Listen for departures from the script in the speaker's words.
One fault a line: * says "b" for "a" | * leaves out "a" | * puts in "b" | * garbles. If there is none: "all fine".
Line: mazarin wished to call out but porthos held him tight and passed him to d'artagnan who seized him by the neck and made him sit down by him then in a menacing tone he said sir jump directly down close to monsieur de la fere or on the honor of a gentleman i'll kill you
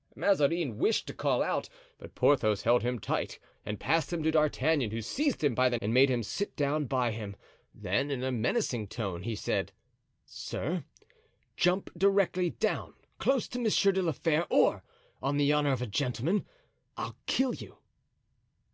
* leaves out "neck"